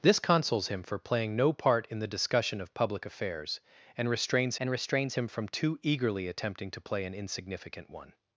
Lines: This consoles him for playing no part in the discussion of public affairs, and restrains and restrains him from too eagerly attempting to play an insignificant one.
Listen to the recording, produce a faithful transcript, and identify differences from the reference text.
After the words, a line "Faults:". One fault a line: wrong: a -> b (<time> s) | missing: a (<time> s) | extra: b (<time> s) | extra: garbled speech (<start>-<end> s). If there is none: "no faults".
This consoles him for playing no part in the discussion of public affairs, and restrains and restrains him from too eagerly attempting to play an insignificant one.
Faults:
no faults